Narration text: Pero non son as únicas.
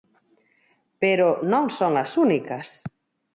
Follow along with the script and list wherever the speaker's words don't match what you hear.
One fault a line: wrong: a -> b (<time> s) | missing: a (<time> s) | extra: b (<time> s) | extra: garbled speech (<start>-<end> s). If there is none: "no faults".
no faults